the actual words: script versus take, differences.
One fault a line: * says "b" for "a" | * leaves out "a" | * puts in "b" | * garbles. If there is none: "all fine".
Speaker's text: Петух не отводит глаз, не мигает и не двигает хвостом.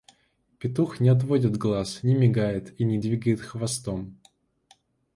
all fine